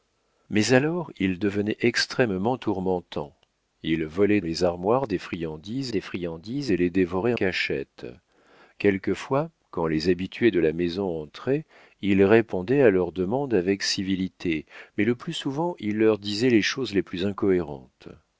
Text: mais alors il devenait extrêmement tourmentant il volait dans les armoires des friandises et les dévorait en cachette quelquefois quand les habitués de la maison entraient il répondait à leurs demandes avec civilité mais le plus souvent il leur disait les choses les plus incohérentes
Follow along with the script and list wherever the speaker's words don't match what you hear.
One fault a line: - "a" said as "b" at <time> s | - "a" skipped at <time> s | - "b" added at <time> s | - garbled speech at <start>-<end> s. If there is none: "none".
- "dans" skipped at 4.4 s
- "des friandises" added at 5.9 s
- "en" skipped at 7.3 s